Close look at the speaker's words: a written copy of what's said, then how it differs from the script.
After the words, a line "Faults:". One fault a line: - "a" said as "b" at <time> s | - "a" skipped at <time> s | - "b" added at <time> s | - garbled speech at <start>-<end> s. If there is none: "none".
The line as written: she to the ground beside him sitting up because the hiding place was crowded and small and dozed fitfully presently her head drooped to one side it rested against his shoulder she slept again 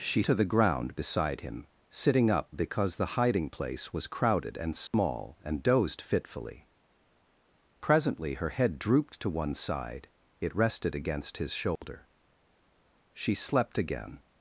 she to the ground beside him sitting up because the hiding place was crowded and small and dozed fitfully presently her head drooped to one side it rested against his shoulder she slept again
Faults:
none